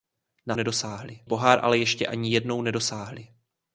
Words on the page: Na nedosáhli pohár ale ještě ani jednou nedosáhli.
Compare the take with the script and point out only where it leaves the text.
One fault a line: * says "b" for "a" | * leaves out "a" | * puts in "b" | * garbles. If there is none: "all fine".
all fine